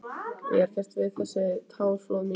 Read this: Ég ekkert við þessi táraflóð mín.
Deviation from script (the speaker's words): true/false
false